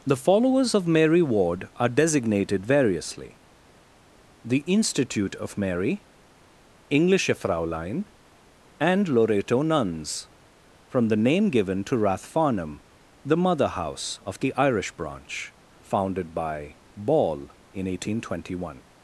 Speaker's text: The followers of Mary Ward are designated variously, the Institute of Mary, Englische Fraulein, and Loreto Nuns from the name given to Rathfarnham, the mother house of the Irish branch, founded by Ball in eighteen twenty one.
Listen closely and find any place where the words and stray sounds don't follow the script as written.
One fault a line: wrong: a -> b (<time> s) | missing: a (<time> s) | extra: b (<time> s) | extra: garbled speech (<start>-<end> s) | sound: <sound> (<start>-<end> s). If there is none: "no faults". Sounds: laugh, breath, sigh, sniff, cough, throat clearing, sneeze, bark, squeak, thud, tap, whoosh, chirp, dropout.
no faults